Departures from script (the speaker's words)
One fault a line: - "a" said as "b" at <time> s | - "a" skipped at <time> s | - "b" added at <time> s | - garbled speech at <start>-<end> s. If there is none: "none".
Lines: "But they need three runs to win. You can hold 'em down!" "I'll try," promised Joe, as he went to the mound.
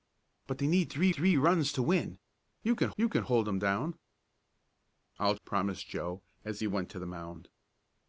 - "three" added at 1.1 s
- "you can" added at 3.0 s
- "try" skipped at 5.4 s